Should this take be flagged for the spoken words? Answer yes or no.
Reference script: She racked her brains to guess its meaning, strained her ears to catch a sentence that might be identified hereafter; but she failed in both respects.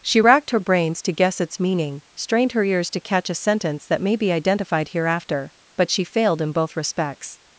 yes